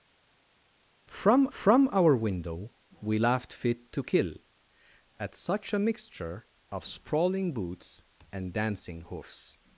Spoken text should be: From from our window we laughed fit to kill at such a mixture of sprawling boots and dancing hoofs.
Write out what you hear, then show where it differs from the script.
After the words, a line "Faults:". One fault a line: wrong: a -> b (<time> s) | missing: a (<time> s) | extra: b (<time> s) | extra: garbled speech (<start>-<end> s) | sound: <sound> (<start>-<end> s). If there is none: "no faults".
From from our window we laughed fit to kill at such a mixture of sprawling boots and dancing hoofs.
Faults:
no faults